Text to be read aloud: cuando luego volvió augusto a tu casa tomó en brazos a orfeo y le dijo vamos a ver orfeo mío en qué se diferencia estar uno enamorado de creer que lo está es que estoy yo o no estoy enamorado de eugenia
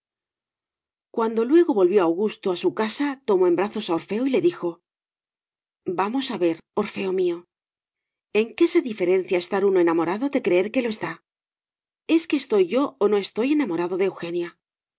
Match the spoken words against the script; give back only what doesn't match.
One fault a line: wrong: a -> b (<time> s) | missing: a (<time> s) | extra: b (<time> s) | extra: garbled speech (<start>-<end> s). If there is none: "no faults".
wrong: tu -> su (2.6 s)